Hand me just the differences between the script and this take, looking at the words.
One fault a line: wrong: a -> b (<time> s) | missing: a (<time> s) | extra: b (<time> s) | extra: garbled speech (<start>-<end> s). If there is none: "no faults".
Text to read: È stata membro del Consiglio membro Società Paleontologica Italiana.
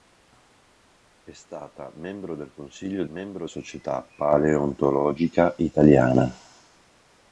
no faults